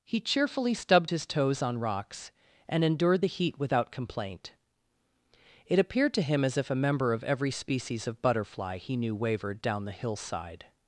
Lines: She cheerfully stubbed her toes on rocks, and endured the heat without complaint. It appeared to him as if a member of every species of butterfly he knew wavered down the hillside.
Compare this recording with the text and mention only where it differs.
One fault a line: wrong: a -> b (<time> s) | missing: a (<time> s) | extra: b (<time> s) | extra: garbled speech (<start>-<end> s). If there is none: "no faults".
wrong: She -> He (0.0 s)
wrong: her -> his (1.1 s)